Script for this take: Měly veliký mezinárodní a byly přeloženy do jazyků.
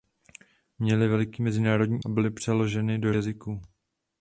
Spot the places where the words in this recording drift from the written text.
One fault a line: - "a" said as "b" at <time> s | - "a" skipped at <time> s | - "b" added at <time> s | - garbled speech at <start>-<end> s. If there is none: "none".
none